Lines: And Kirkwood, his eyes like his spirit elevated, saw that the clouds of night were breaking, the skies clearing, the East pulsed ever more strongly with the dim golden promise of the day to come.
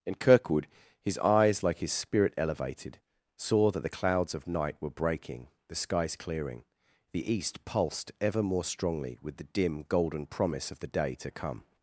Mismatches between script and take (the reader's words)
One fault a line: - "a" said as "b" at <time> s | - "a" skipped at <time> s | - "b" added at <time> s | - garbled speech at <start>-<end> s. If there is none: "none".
none